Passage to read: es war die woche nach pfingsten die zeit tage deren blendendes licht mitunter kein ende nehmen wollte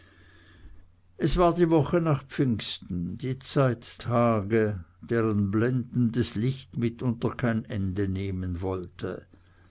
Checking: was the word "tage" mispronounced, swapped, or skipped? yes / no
no